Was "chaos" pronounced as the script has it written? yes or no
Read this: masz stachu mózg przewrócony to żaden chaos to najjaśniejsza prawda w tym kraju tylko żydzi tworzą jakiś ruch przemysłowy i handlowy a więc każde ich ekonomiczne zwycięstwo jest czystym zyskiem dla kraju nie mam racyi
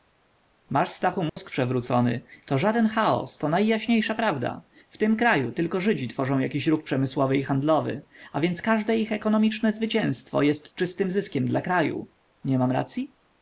yes